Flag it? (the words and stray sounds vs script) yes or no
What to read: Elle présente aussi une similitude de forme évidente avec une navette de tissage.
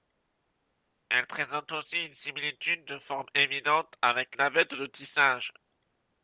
yes